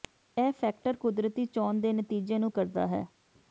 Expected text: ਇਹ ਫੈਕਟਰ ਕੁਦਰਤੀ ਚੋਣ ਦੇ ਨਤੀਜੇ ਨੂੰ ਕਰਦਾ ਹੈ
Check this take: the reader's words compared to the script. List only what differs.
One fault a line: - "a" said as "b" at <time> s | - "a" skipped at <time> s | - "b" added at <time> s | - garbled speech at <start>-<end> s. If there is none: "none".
none